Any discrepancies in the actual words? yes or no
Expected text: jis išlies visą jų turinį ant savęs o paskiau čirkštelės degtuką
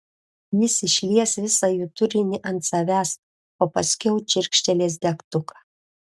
no